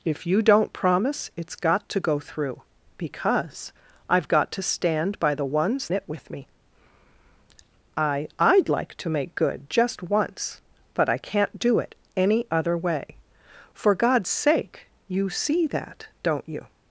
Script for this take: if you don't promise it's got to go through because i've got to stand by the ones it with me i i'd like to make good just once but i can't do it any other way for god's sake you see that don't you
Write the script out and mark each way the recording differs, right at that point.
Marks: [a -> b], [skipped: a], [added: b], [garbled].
if you don't promise it's got to go through because i've got to stand by the ones it with me i i'd like to make good just once but i can't do it any other way for god's sake you see that don't you